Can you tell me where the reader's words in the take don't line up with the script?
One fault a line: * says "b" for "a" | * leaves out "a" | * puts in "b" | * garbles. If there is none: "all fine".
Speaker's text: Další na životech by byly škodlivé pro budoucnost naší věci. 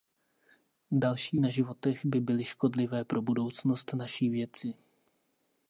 all fine